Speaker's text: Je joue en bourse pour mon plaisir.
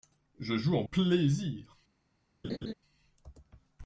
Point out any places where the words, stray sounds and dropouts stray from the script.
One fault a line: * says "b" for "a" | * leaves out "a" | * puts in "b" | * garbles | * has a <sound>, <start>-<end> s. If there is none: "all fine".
* leaves out "bourse pour mon"
* has a laugh, 2.4-2.7 s